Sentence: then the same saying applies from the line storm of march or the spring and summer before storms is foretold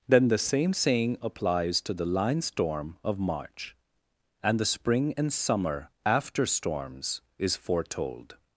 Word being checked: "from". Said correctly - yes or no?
no